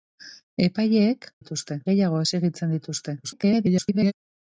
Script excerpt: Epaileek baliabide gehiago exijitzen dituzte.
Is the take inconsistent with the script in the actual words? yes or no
yes